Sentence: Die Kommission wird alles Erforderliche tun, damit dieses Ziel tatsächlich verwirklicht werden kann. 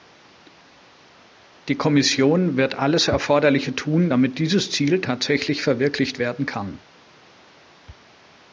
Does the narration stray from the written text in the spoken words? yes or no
no